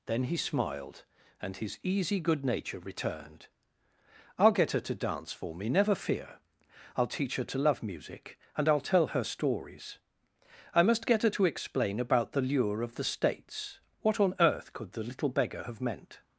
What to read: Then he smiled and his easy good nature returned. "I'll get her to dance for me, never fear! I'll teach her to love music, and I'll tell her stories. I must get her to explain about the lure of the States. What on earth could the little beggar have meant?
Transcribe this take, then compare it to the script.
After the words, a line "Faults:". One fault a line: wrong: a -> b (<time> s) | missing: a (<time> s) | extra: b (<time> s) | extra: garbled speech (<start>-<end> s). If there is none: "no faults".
Then he smiled and his easy good nature returned. "I'll get her to dance for me, never fear! I'll teach her to love music, and I'll tell her stories. I must get her to explain about the lure of the States. What on earth could the little beggar have meant?
Faults:
no faults